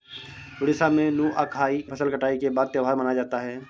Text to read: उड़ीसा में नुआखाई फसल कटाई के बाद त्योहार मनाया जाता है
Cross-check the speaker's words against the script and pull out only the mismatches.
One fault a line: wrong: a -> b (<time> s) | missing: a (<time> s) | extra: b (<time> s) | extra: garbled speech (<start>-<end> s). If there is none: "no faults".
no faults